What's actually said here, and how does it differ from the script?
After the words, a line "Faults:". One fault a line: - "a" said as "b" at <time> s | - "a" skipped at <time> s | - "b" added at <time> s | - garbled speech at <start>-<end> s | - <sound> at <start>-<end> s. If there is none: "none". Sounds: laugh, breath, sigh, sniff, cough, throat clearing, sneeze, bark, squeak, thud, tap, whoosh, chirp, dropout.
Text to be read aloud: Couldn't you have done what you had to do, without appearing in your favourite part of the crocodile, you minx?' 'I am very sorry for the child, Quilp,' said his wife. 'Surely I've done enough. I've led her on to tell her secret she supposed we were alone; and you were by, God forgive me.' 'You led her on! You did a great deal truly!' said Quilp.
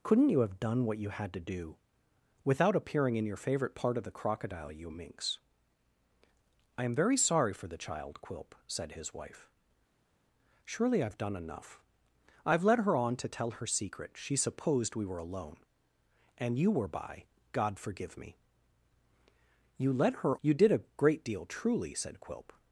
Couldn't you have done what you had to do, without appearing in your favourite part of the crocodile, you minx?' 'I am very sorry for the child, Quilp,' said his wife. 'Surely I've done enough. I've led her on to tell her secret she supposed we were alone; and you were by, God forgive me.' 'You led her! You did a great deal truly!' said Quilp.
Faults:
- "on" skipped at 20.4 s